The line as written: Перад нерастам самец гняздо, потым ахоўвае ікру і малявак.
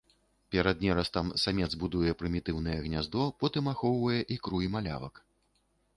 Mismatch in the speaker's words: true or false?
true